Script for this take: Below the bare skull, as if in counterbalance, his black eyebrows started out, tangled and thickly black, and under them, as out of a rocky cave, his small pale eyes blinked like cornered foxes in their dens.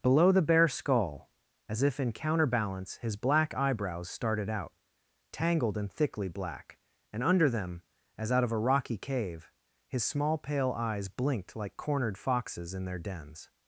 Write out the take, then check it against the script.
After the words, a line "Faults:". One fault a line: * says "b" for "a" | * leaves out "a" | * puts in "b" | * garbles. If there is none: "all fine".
Below the bare skull, as if in counterbalance, his black eyebrows started out, tangled and thickly black, and under them, as out of a rocky cave, his small pale eyes blinked like cornered foxes in their dens.
Faults:
all fine